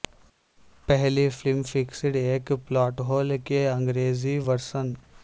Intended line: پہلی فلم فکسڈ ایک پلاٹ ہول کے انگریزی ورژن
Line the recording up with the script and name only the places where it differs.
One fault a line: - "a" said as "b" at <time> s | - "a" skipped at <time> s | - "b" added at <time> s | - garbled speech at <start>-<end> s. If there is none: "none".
none